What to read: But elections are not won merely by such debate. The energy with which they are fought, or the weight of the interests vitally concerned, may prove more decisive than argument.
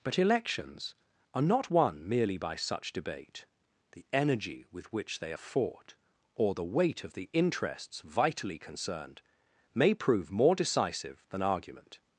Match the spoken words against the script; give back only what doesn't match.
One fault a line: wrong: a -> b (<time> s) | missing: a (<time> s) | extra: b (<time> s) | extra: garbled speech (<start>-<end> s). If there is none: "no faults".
no faults